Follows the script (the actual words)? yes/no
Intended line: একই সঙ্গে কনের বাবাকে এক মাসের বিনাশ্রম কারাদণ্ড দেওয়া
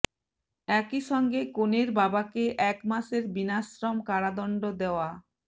yes